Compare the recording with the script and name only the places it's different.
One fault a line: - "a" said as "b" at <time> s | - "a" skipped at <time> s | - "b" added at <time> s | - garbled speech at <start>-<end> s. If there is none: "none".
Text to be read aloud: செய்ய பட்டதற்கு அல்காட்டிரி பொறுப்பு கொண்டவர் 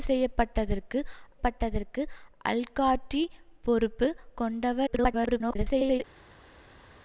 - "பட்டதற்கு" added at 1.4 s
- garbled speech at 4.9-6.0 s